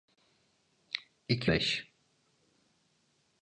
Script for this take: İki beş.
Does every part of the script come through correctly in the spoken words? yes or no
yes